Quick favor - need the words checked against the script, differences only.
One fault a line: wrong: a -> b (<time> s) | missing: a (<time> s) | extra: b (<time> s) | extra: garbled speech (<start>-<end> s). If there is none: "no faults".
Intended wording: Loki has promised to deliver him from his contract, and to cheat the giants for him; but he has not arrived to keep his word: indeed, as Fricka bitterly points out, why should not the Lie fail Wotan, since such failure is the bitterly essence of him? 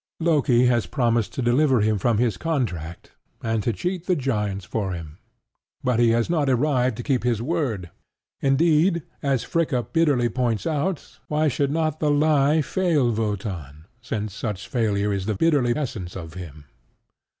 no faults